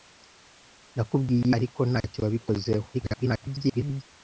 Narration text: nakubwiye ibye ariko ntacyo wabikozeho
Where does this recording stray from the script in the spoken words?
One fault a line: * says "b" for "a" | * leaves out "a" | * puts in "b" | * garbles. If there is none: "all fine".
* leaves out "ibye"
* garbles